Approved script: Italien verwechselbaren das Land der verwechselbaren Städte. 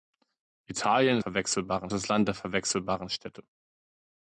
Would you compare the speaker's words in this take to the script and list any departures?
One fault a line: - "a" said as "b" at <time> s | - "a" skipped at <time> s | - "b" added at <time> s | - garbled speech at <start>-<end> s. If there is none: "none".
none